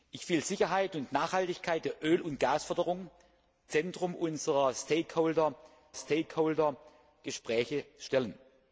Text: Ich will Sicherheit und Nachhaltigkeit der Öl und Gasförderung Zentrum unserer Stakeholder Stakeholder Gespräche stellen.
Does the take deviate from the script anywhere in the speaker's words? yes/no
no